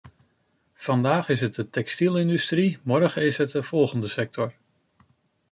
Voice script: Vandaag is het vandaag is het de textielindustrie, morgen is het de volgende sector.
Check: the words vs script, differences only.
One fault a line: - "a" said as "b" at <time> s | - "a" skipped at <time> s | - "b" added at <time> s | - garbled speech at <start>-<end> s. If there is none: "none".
- "vandaag is het" skipped at 1.6 s